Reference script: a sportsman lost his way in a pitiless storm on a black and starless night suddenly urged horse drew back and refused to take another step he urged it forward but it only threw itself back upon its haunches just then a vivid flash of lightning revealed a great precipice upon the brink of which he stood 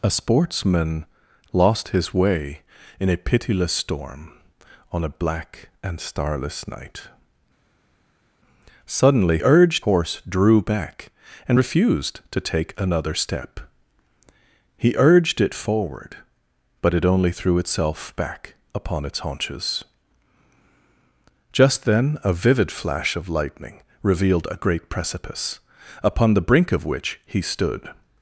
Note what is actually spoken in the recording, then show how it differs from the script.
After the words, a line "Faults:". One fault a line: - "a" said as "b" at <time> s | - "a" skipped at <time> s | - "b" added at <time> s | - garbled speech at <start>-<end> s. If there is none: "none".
a sportsman lost his way in a pitiless storm on a black and starless night suddenly urged horse drew back and refused to take another step he urged it forward but it only threw itself back upon its haunches just then a vivid flash of lightning revealed a great precipice upon the brink of which he stood
Faults:
none